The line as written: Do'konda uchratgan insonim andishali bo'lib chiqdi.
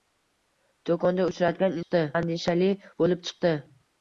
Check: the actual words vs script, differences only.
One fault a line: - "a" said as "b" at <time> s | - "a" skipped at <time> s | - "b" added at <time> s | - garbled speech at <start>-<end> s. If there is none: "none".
- "insonim" said as "chiqdi" at 1.8 s